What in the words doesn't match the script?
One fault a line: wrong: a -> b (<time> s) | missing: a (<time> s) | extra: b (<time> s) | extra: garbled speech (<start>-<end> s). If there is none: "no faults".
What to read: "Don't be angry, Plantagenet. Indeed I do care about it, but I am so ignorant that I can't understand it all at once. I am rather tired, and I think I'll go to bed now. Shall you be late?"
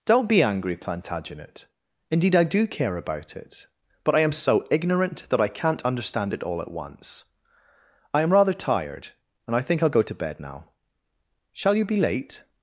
no faults